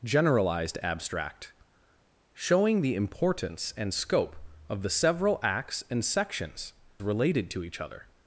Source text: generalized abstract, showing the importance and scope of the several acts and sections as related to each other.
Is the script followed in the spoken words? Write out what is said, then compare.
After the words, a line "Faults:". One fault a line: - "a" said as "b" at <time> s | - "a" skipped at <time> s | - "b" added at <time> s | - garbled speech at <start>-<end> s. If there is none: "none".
generalized abstract, showing the importance and scope of the several acts and sections related to each other.
Faults:
- "as" skipped at 6.7 s